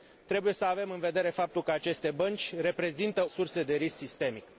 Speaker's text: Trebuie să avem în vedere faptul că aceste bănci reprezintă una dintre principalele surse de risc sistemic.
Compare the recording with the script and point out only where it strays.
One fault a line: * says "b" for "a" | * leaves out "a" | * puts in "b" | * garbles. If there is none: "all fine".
* leaves out "una dintre principalele"